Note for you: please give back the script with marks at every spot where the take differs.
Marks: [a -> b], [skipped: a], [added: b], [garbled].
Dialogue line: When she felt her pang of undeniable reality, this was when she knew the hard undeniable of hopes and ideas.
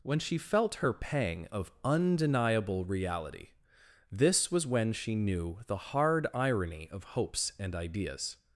When she felt her pang of undeniable reality, this was when she knew the hard [undeniable -> irony] of hopes and ideas.